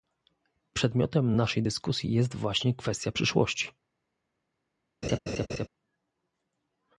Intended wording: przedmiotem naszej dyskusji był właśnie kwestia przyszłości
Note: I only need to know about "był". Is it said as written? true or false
false